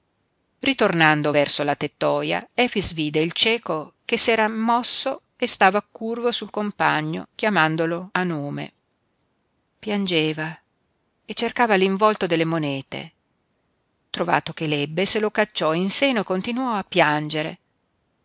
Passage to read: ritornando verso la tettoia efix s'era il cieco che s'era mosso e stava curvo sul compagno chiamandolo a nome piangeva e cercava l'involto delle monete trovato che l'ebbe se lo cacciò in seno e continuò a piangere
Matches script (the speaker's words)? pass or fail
fail